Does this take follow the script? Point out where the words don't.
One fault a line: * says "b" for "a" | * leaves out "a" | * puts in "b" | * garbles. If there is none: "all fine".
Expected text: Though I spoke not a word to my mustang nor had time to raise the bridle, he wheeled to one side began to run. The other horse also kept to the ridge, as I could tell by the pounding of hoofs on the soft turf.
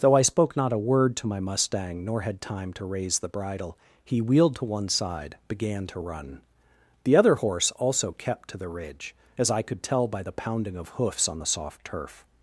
all fine